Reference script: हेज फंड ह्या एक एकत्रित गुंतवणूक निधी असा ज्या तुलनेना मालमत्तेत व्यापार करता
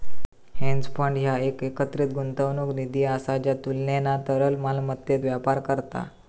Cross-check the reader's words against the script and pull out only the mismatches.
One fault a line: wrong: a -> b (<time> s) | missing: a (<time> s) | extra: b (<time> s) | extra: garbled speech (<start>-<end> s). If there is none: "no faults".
extra: तरल (4.3 s)